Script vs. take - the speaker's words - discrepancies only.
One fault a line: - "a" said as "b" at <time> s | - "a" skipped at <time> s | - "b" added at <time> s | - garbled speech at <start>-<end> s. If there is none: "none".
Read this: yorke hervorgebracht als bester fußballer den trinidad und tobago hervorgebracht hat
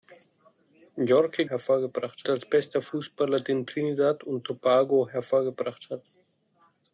none